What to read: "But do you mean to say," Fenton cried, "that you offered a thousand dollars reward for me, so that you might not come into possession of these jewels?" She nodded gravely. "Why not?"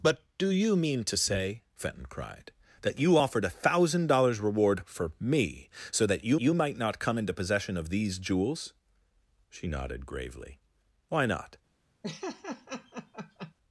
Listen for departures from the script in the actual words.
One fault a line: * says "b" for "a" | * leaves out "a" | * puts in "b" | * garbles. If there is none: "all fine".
* puts in "you"